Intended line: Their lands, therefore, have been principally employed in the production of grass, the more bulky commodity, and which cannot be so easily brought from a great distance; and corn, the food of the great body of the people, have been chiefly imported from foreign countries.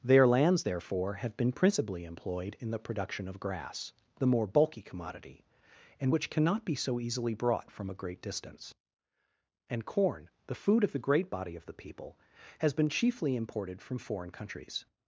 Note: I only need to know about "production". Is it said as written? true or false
true